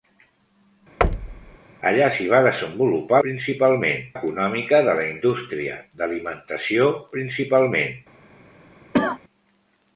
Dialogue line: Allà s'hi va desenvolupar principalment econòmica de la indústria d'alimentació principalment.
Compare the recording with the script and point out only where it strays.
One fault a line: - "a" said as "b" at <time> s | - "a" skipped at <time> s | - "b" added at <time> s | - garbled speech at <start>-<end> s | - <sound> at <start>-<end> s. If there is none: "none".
- thud at 1.0-1.6 s
- cough at 8.9-9.2 s